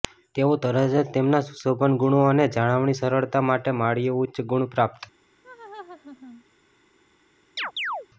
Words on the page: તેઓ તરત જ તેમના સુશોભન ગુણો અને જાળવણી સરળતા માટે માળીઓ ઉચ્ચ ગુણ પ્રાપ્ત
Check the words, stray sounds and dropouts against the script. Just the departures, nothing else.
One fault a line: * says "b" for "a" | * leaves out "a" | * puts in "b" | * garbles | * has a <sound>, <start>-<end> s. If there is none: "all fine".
* has a laugh, 5.4-6.4 s
* has a chirp, 7.6-8.1 s